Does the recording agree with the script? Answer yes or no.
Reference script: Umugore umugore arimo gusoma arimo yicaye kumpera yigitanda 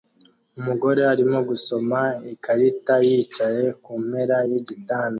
no